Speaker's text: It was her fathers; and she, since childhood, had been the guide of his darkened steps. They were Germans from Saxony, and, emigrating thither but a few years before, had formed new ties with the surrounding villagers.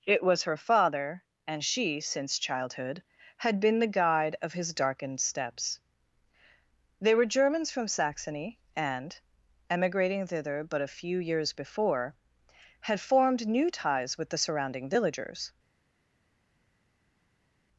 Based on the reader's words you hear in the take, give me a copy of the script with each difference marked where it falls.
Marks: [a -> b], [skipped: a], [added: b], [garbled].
It was her [fathers; -> father] and she, since childhood, had been the guide of his darkened steps. They were Germans from Saxony, and, emigrating thither but a few years before, had formed new ties with the surrounding villagers.